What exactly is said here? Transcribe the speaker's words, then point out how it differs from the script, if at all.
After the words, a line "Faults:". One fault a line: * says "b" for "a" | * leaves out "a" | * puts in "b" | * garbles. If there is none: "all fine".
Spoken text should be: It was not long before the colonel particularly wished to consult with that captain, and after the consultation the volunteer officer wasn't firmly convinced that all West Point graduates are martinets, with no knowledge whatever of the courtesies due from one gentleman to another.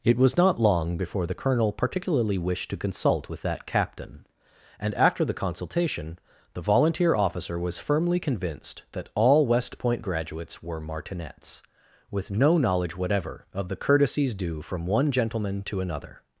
It was not long before the colonel particularly wished to consult with that captain, and after the consultation the volunteer officer was firmly convinced that all West Point graduates were martinets, with no knowledge whatever of the courtesies due from one gentleman to another.
Faults:
* says "was" for "wasn't"
* says "were" for "are"